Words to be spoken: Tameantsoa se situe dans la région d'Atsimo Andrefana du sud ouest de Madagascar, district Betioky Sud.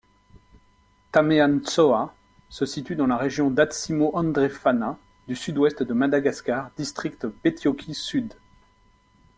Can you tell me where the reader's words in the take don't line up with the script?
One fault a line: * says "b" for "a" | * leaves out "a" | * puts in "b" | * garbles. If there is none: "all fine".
all fine